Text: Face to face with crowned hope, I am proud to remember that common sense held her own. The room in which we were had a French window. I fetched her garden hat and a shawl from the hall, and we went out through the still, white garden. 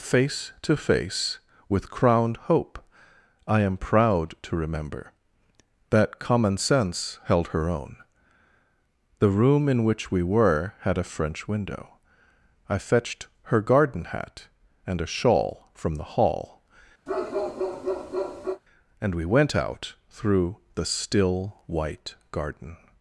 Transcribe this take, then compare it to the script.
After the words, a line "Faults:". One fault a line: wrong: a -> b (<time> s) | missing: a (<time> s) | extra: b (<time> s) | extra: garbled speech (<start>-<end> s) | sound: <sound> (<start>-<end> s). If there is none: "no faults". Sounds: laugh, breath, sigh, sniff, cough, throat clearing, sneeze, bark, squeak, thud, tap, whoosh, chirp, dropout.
Face to face with crowned hope, I am proud to remember that common sense held her own. The room in which we were had a French window. I fetched her garden hat and a shawl from the hall, and we went out through the still, white garden.
Faults:
sound: bark (17.1-18.6 s)